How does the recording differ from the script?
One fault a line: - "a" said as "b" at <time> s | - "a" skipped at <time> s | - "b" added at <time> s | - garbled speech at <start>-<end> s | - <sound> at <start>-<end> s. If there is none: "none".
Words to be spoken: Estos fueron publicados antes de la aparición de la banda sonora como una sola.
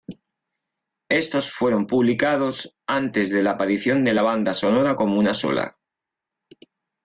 none